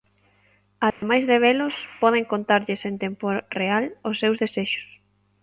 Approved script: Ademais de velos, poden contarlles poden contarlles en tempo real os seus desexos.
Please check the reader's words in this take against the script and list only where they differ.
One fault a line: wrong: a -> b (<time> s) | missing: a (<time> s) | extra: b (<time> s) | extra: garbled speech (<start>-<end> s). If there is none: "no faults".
missing: poden contarlles (2.8 s)